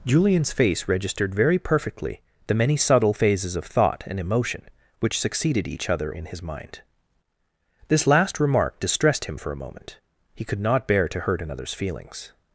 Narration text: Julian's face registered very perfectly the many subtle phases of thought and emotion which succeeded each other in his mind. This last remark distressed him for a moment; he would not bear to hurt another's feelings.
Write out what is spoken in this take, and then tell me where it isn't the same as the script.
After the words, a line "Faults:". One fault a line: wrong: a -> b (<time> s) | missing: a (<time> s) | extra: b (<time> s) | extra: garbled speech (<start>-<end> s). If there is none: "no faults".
Julian's face registered very perfectly the many subtle phases of thought and emotion which succeeded each other in his mind. This last remark distressed him for a moment; he could not bear to hurt another's feelings.
Faults:
wrong: would -> could (10.4 s)